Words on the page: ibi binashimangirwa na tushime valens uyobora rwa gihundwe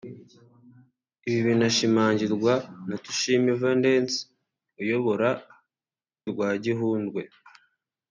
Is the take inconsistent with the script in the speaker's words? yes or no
no